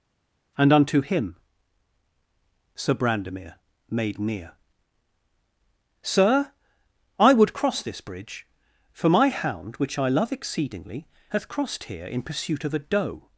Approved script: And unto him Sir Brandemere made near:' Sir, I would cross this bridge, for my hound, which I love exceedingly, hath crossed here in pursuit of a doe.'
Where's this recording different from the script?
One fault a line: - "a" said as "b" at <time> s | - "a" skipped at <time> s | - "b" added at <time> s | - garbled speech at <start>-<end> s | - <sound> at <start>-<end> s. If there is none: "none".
none